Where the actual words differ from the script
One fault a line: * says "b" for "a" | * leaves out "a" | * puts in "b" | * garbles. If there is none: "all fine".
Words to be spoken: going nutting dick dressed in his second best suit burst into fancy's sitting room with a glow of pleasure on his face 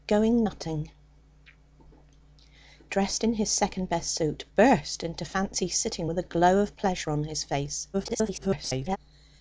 * leaves out "dick"
* leaves out "room"
* garbles